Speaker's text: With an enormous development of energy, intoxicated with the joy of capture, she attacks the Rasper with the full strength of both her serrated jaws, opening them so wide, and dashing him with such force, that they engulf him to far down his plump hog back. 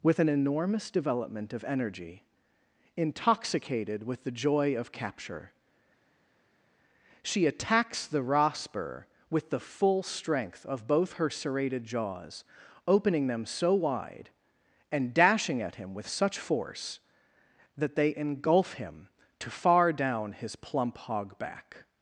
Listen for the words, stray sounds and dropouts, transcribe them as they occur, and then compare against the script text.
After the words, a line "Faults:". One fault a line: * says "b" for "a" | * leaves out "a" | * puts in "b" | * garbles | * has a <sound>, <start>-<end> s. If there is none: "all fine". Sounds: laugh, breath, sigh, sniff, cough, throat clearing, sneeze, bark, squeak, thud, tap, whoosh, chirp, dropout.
With an enormous development of energy, intoxicated with the joy of capture, she attacks the Rasper with the full strength of both her serrated jaws, opening them so wide, and dashing at him with such force, that they engulf him to far down his plump hog back.
Faults:
* puts in "at"